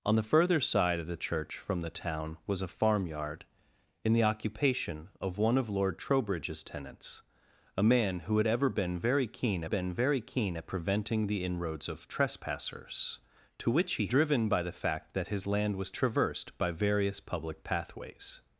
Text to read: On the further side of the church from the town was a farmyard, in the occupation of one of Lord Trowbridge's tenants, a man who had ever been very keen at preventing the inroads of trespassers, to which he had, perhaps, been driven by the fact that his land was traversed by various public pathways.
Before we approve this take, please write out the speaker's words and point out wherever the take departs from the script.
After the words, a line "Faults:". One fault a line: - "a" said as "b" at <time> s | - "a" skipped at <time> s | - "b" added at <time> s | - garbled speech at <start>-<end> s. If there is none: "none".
On the further side of the church from the town was a farmyard, in the occupation of one of Lord Trowbridge's tenants, a man who had ever been very keen been very keen at preventing the inroads of trespassers, to which he driven by the fact that his land was traversed by various public pathways.
Faults:
- "been very keen" added at 9.6 s
- "had perhaps been" skipped at 14.1 s